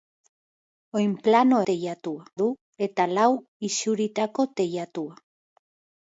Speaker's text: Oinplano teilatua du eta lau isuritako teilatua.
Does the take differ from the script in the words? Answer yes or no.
no